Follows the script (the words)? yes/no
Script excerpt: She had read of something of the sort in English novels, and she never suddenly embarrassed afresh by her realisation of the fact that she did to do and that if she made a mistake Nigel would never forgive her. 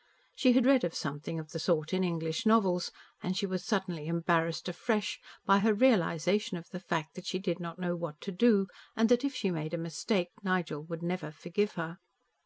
no